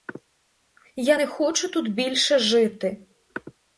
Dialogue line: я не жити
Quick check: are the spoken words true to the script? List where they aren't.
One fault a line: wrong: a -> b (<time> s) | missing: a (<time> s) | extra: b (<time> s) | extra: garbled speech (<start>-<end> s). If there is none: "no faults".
extra: хочу тут більше (1.3 s)